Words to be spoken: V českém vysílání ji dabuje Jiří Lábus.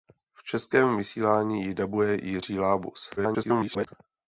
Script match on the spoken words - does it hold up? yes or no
no